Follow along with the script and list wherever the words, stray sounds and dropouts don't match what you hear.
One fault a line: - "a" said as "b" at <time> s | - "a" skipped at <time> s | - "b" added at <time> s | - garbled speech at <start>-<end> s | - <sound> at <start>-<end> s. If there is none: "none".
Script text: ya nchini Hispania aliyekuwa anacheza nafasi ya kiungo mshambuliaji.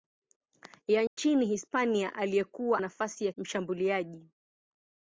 - dropout at 1.1-1.2 s
- "anacheza" skipped at 2.8 s
- "kiungo" skipped at 3.3 s